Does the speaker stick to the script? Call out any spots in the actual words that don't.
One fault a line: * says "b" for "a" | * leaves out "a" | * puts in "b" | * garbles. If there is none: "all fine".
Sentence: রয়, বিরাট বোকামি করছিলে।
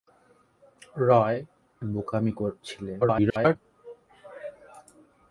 * leaves out "বিরাট"
* garbles